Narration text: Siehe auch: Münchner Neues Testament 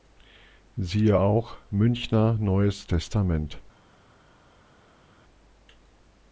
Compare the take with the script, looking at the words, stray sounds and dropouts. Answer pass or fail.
pass